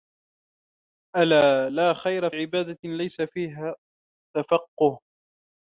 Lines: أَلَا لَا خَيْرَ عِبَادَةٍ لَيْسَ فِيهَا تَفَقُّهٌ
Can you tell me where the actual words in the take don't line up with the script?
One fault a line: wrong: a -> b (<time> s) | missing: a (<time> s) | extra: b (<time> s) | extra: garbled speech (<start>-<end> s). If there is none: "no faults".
no faults